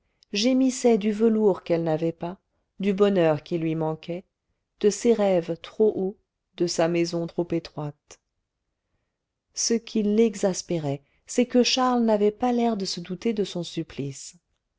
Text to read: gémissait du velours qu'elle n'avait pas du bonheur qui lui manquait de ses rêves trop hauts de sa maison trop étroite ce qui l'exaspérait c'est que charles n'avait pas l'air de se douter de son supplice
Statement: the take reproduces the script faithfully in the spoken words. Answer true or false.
true